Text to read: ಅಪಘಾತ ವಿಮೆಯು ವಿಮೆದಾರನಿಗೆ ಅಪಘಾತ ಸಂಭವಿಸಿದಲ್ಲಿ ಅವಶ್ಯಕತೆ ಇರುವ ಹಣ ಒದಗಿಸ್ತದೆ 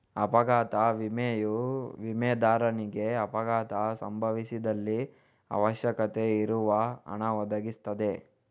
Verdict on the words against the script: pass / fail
pass